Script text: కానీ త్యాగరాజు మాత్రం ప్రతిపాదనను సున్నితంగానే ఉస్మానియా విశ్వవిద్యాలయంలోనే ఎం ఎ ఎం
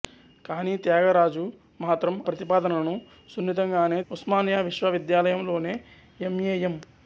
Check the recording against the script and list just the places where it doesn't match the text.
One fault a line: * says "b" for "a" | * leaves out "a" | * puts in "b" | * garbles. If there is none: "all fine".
all fine